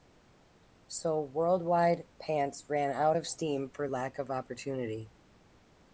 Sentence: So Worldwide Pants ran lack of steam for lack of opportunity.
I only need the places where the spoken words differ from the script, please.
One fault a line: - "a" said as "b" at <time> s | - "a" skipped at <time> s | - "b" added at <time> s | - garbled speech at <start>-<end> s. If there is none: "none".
- "lack" said as "out" at 2.9 s